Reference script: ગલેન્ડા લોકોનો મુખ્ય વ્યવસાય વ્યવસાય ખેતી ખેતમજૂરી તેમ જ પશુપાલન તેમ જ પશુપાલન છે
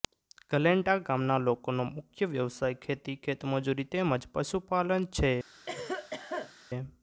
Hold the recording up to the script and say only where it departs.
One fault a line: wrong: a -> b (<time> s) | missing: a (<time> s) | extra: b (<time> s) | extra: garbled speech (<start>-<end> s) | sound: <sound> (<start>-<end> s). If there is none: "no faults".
extra: ગામના (1.0 s)
missing: વ્યવસાય (2.8 s)
missing: તેમ જ પશુપાલન (5.1 s)
sound: cough (5.7-6.5 s)